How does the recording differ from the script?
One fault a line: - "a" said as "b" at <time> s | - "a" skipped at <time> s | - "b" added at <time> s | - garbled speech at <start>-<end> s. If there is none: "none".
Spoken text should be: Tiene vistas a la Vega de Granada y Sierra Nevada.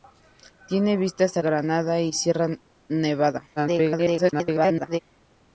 - "la Vega de" skipped at 1.4 s
- garbled speech at 3.6-5.0 s